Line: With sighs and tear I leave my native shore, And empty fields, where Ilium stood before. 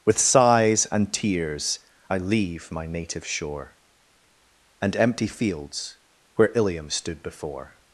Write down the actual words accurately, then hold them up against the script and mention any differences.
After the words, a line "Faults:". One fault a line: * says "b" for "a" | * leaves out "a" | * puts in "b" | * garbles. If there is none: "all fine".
With sighs and tears I leave my native shore, And empty fields, where Ilium stood before.
Faults:
* says "tears" for "tear"